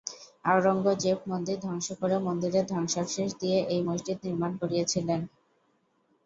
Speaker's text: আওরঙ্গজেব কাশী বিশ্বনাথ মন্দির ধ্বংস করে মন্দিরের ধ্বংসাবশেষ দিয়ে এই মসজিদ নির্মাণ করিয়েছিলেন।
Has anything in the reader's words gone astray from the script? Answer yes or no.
yes